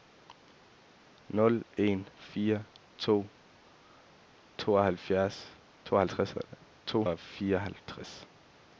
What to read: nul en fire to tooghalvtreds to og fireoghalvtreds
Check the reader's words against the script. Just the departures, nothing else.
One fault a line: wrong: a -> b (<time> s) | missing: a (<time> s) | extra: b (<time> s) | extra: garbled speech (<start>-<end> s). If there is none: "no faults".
no faults